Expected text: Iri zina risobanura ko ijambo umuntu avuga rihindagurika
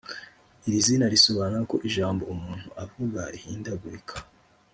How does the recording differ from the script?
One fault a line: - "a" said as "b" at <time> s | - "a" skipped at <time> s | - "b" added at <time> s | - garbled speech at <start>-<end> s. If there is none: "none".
none